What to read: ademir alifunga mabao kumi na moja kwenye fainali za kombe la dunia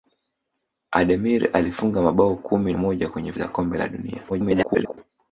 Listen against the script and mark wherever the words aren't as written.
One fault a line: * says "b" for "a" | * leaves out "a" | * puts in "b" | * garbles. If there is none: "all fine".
* leaves out "na"
* leaves out "fainali"
* garbles